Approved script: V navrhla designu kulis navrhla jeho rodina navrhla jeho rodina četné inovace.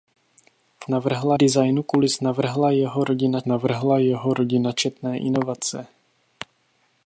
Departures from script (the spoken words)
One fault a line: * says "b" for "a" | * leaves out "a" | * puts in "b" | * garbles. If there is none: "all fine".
all fine